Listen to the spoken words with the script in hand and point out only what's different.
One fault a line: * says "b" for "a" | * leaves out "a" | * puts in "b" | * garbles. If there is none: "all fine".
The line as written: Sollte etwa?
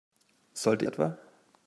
all fine